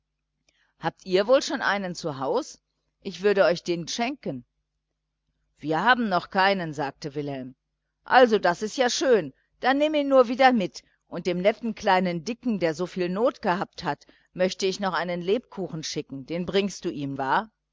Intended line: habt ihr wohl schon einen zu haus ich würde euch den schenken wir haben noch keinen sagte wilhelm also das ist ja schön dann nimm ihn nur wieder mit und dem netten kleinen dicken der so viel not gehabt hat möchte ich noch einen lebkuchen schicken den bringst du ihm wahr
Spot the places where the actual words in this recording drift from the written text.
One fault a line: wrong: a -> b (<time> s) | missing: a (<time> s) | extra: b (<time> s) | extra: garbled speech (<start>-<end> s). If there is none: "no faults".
no faults